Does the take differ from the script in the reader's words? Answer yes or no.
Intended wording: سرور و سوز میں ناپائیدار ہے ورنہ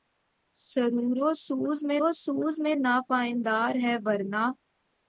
yes